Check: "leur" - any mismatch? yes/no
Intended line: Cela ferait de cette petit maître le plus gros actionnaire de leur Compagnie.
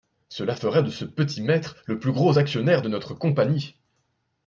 yes